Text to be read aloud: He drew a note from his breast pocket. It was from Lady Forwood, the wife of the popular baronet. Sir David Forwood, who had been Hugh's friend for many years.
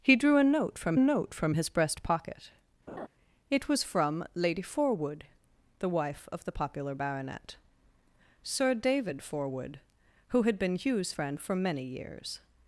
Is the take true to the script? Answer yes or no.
no